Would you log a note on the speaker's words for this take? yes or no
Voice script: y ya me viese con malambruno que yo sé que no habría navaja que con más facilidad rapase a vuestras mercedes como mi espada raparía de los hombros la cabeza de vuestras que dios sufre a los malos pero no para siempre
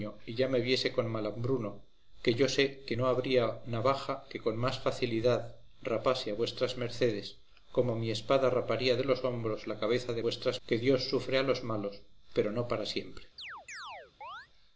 no